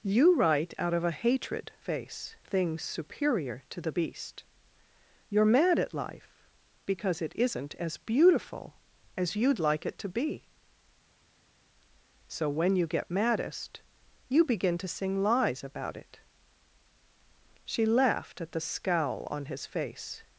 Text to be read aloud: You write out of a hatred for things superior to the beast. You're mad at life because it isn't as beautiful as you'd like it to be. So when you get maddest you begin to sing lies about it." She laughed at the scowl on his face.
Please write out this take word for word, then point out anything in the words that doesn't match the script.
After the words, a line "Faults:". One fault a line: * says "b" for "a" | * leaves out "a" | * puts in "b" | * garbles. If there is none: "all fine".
You write out of a hatred face things superior to the beast. You're mad at life because it isn't as beautiful as you'd like it to be. So when you get maddest you begin to sing lies about it." She laughed at the scowl on his face.
Faults:
* says "face" for "for"